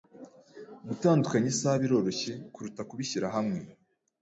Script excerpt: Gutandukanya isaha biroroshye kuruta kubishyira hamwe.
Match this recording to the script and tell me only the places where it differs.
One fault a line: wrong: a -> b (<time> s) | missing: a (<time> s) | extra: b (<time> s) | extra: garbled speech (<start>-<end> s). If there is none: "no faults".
no faults